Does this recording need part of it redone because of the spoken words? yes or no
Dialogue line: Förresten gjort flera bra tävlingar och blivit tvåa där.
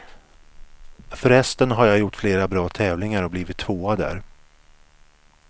yes